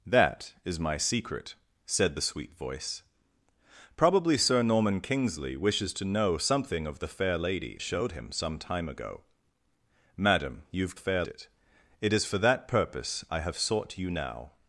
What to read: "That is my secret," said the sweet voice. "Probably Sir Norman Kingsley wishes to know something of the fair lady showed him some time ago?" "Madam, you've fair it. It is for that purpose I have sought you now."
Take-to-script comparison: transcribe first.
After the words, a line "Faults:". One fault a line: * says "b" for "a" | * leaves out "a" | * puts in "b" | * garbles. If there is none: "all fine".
"That is my secret," said the sweet voice. "Probably Sir Norman Kingsley wishes to know something of the fair lady showed him some time ago?" "Madam, you've fair it. It is for that purpose I have sought you now."
Faults:
all fine